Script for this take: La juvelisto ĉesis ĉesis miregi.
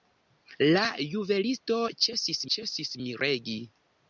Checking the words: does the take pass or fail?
pass